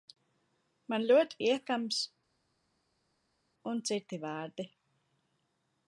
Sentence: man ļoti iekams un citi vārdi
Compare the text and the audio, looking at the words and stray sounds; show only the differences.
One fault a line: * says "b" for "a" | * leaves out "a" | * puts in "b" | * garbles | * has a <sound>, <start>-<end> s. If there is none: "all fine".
all fine